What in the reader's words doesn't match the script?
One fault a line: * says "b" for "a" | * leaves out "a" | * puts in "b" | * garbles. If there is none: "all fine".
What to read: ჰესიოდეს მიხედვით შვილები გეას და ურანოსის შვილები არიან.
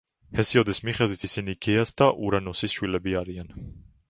* says "ისინი" for "შვილები"